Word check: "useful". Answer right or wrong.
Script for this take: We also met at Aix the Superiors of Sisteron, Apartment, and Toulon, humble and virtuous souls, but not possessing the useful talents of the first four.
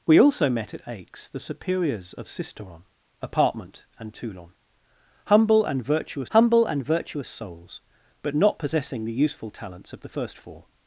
right